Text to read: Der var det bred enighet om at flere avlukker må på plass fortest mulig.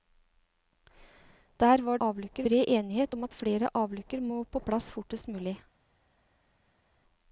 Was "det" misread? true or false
true